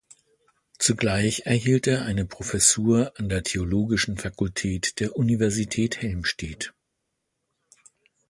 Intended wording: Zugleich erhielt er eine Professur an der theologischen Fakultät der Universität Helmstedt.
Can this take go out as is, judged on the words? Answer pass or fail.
pass